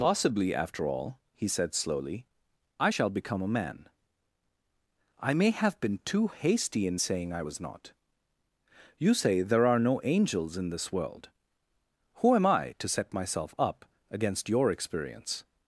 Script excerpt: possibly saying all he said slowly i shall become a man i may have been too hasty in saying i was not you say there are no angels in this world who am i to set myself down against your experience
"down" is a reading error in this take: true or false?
true